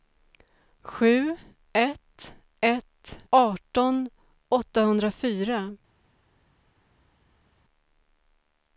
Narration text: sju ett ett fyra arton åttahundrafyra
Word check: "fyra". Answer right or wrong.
wrong